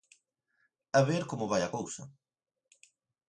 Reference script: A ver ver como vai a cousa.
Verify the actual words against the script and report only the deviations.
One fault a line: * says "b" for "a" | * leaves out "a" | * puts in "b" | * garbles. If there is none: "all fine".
* leaves out "ver"